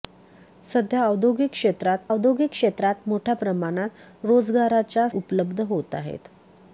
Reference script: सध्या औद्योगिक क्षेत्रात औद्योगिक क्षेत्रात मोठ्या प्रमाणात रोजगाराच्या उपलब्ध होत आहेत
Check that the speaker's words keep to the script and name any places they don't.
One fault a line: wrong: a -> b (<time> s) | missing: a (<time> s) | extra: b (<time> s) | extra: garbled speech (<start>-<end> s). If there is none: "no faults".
no faults